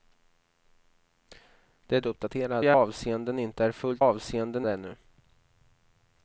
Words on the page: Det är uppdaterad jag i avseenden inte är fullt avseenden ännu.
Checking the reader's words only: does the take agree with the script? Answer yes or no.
yes